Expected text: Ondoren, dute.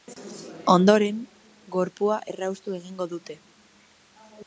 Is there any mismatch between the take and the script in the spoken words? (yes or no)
yes